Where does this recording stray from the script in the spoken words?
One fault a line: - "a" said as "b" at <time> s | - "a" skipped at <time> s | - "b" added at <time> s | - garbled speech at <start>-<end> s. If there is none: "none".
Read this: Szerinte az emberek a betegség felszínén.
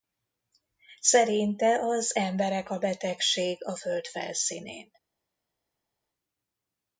- "a föld" added at 3.6 s